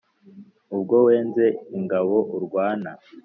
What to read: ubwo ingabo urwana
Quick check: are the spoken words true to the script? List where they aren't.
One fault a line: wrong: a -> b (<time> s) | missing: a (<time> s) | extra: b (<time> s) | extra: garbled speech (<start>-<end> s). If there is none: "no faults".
extra: wenze (1.1 s)